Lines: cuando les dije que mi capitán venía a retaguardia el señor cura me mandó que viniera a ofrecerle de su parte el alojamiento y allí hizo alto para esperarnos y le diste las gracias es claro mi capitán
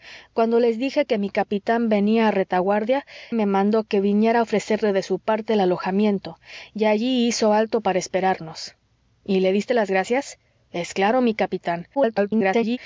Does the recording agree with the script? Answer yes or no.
no